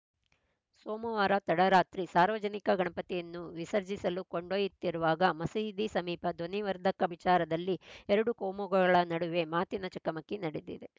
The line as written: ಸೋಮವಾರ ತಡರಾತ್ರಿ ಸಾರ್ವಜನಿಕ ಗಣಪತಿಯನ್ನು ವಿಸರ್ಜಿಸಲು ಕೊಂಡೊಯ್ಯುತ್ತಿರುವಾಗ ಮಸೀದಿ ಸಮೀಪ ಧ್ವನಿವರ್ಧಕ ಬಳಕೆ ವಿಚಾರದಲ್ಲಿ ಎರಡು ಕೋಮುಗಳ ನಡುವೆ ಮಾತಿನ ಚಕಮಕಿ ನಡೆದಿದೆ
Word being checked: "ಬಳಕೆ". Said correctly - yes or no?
no